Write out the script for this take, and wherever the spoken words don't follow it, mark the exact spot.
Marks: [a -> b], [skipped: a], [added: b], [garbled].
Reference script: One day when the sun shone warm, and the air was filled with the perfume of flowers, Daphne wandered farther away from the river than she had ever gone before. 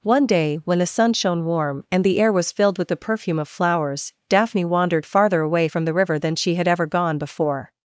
One day when the sun shone warm, and the air was filled with the perfume of flowers, Daphne wandered farther away from the river than she had ever gone before.